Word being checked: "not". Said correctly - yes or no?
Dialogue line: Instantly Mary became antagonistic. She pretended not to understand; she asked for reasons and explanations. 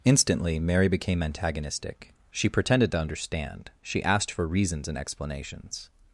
no